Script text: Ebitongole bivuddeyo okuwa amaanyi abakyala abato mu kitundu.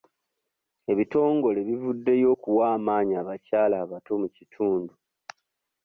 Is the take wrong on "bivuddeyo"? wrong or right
right